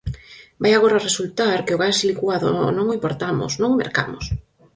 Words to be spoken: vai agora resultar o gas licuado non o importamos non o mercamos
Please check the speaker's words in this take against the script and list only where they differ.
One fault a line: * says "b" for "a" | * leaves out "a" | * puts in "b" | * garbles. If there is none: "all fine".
* puts in "que"